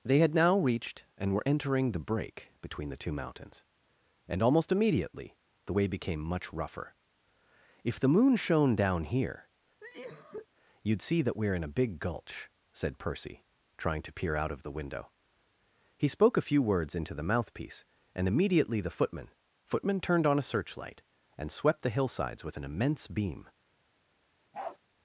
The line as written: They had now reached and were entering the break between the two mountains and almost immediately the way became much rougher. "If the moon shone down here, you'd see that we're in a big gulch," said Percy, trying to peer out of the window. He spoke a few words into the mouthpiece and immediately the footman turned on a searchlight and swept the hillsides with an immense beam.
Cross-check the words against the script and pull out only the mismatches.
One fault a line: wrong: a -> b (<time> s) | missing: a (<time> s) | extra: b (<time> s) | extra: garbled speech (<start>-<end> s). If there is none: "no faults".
extra: footman (19.6 s)